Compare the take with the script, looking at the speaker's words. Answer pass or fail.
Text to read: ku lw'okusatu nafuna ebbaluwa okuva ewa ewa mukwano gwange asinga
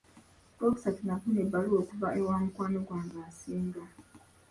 fail